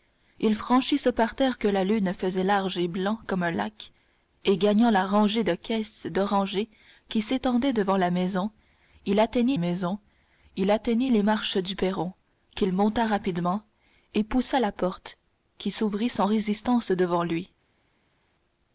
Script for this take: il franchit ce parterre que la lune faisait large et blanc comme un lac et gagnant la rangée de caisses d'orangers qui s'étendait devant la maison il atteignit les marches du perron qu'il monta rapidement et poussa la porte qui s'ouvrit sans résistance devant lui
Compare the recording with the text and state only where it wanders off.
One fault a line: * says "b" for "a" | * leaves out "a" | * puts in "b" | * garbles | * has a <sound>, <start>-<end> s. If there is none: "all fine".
* puts in "maison il atteignit"